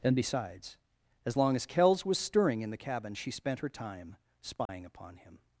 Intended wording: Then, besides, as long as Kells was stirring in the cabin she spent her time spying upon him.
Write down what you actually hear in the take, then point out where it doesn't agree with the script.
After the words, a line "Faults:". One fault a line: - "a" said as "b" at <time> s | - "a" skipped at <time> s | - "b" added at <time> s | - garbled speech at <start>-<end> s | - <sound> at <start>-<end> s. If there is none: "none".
And, besides, as long as Kells was stirring in the cabin she spent her time spying upon him.
Faults:
- "Then" said as "And" at 0.0 s
- dropout at 4.7-4.7 s